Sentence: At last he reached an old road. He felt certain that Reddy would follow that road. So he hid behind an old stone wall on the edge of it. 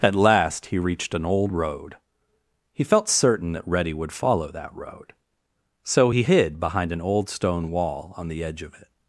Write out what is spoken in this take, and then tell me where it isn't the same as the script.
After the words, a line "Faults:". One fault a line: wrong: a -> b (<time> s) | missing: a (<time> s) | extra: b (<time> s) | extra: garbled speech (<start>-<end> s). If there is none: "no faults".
At last he reached an old road. He felt certain that Reddy would follow that road. So he hid behind an old stone wall on the edge of it.
Faults:
no faults